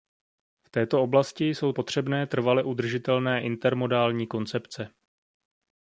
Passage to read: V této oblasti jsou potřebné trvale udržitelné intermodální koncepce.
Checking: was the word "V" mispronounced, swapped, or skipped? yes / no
no